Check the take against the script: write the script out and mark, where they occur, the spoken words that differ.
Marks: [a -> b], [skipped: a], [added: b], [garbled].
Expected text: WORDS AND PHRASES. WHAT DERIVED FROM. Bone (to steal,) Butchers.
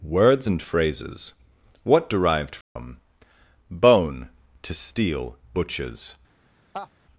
WORDS AND PHRASES. WHAT DERIVED FROM. Bone (to steal,) Butchers.